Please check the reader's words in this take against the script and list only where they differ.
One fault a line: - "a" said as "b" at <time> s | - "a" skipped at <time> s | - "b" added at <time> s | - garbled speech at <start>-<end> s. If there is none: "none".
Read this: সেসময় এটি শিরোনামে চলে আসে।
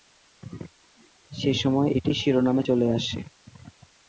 none